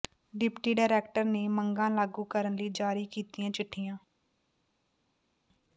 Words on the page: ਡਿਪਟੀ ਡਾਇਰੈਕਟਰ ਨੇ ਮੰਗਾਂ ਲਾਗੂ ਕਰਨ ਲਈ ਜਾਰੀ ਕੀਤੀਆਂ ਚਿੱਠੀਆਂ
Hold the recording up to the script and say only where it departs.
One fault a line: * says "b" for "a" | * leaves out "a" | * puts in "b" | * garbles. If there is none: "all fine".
all fine